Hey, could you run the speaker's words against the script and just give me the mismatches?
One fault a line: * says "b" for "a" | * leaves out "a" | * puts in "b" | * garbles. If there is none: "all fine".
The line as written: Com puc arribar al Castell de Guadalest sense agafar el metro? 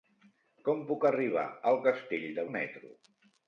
* leaves out "Guadalest sense agafar"